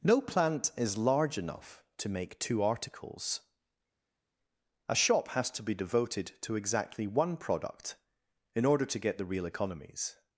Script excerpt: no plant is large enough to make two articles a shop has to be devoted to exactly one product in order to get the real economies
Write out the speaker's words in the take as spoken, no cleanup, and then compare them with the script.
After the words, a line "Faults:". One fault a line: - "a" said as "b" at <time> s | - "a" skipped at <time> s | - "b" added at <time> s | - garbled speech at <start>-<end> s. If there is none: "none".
no plant is large enough to make two articles a shop has to be devoted to exactly one product in order to get the real economies
Faults:
none